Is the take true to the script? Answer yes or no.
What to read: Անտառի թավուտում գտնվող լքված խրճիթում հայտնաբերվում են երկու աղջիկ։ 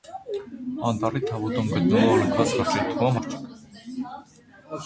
no